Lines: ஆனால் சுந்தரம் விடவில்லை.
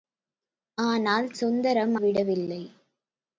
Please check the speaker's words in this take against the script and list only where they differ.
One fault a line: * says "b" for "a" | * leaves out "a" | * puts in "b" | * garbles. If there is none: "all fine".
all fine